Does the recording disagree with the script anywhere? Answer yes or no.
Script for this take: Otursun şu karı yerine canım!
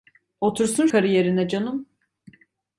yes